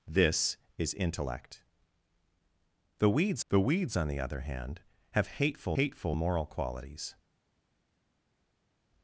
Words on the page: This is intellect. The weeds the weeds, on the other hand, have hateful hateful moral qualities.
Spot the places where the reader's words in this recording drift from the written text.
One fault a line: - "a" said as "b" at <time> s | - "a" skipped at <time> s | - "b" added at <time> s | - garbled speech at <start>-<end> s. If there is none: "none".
none